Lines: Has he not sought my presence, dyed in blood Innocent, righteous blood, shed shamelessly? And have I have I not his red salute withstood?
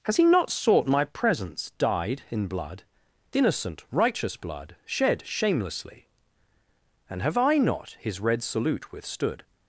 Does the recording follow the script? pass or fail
fail